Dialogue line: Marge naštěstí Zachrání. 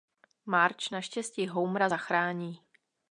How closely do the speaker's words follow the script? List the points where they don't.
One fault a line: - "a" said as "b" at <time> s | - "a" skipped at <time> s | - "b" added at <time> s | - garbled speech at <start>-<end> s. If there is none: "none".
- "Homera" added at 1.5 s